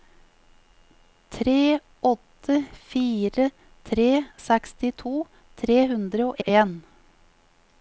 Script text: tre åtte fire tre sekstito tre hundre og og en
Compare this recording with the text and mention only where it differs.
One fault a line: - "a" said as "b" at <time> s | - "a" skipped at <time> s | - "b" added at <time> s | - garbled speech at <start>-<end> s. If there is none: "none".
none